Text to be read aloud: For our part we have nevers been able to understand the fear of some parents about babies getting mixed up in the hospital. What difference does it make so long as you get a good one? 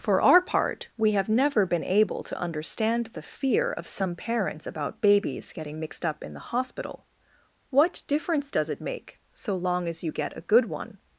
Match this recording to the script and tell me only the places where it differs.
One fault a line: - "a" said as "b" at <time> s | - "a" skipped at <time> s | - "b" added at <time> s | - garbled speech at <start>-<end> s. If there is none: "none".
- "nevers" said as "never" at 1.3 s